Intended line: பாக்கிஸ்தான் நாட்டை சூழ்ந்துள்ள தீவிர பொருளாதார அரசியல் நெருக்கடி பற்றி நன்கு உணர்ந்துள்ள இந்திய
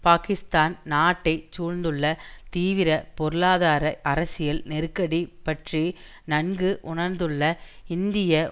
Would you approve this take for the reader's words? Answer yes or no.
yes